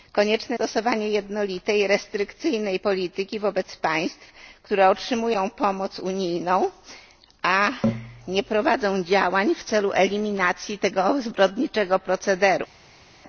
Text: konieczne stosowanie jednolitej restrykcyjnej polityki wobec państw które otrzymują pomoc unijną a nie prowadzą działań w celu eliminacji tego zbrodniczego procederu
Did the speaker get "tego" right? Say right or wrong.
right